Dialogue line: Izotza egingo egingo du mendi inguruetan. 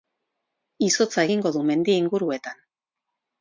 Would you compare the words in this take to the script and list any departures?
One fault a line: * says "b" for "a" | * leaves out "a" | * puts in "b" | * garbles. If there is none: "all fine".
* leaves out "egingo"